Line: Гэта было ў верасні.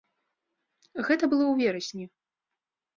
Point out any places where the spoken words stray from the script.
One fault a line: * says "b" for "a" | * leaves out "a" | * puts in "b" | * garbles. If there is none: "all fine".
all fine